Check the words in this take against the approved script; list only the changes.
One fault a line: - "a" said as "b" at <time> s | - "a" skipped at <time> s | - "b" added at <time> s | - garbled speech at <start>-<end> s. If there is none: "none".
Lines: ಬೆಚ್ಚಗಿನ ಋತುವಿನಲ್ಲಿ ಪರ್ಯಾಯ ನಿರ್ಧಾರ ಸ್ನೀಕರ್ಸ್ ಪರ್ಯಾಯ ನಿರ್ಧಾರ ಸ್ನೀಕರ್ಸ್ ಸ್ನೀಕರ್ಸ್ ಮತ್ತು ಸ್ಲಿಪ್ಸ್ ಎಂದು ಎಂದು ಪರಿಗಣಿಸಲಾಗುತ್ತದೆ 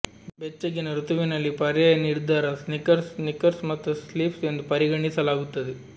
- "ಪರ್ಯಾಯ ನಿರ್ಧಾರ" skipped at 3.1 s
- "ಸ್ನೀಕರ್ಸ್" skipped at 3.6 s
- "ಎಂದು" skipped at 4.6 s